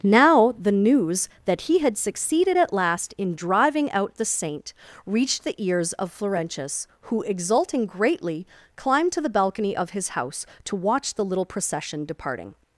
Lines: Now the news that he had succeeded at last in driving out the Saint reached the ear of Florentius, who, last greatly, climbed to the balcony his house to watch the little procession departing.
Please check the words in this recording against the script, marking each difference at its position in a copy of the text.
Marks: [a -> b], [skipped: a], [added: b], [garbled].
Now the news that he had succeeded at last in driving out the Saint reached the [ear -> ears] of Florentius, who, [last -> exulting] greatly, climbed to the balcony [added: of] his house to watch the little procession departing.